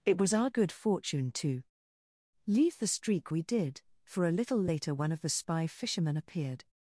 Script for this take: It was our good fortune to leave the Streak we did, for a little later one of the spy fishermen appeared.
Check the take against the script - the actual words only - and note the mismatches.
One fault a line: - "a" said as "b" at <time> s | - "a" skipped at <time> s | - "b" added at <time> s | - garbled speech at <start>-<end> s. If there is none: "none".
none